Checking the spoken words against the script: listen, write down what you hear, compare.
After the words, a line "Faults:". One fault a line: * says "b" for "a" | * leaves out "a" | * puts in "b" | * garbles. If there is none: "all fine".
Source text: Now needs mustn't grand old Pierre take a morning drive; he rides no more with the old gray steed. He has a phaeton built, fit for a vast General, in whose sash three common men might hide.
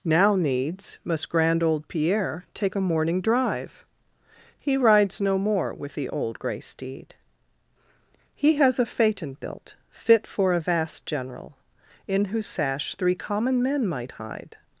Now needs must grand old Pierre take a morning drive; he rides no more with the old gray steed. He has a phaeton built, fit for a vast General, in whose sash three common men might hide.
Faults:
* says "must" for "mustn't"